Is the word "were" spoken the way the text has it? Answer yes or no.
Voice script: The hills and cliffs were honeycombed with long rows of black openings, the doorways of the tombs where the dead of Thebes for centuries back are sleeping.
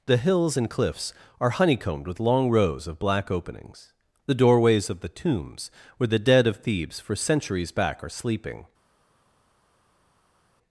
no